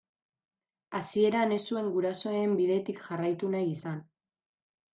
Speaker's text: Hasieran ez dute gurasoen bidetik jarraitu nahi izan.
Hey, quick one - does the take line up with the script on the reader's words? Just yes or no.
no